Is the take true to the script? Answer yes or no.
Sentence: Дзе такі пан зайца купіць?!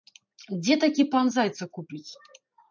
yes